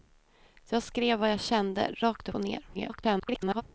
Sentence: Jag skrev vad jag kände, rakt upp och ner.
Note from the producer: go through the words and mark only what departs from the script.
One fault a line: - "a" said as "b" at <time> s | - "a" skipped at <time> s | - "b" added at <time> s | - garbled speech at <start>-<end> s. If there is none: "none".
- "upp" skipped at 2.3 s
- garbled speech at 2.7-3.6 s